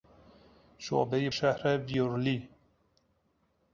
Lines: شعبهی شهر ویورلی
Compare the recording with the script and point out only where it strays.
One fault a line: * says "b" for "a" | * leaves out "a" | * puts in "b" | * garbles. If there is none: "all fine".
all fine